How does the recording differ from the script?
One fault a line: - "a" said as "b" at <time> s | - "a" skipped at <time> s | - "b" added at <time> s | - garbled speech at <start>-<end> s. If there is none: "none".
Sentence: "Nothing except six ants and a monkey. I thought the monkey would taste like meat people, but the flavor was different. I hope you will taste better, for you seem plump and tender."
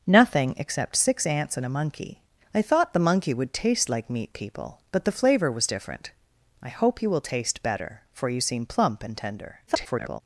- garbled speech at 9.7-10.2 s